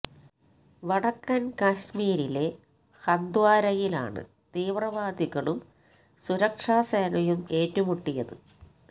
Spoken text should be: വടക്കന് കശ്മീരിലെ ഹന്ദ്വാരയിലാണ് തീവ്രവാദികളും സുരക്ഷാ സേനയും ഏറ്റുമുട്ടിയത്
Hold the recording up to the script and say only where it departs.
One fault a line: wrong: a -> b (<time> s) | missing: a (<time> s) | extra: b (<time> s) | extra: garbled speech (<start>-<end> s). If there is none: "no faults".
no faults